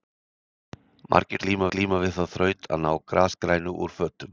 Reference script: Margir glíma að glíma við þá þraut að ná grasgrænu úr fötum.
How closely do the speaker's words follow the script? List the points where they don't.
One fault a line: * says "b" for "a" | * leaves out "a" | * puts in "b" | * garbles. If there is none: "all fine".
all fine